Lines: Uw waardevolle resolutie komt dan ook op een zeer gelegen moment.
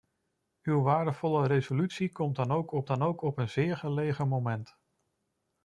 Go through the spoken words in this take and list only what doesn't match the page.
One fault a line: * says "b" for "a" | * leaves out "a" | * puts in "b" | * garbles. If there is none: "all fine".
* puts in "dan ook op"